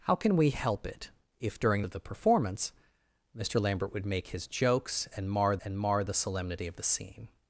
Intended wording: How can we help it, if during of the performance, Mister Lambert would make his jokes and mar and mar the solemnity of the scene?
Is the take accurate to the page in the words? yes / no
yes